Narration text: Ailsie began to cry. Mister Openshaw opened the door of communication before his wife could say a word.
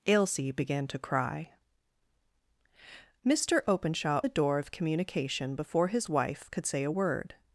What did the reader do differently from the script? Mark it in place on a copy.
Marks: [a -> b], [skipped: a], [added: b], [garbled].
Ailsie began to cry. Mister Openshaw [skipped: opened] the door of communication before his wife could say a word.